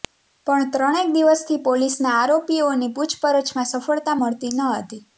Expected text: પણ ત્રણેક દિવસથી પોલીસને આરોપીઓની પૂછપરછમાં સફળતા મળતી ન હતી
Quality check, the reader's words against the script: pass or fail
pass